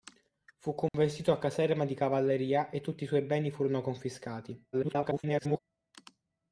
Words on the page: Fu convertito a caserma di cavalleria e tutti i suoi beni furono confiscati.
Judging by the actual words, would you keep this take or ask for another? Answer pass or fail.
fail